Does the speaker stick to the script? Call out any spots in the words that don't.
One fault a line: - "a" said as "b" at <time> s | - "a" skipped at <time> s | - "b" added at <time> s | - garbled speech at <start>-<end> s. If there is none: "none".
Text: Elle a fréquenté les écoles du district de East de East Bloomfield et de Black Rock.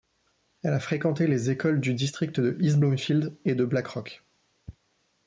- "de East" skipped at 2.8 s